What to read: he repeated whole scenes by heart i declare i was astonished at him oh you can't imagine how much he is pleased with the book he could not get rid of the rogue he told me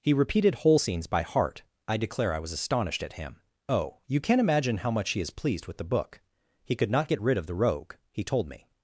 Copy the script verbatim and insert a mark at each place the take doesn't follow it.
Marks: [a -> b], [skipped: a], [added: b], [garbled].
he repeated whole scenes by heart i declare i was astonished at him oh you can't imagine how much he is pleased with the book he could not get rid of the rogue he told me